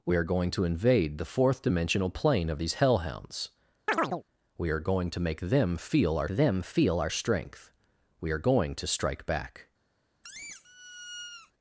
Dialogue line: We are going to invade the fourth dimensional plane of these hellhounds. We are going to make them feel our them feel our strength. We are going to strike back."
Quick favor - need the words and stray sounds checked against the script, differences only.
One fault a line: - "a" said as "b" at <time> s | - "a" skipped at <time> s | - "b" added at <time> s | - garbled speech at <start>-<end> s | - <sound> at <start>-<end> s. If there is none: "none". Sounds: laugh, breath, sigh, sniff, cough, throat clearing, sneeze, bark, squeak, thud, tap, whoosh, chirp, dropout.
- chirp at 3.9-4.2 s
- squeak at 10.2-11.5 s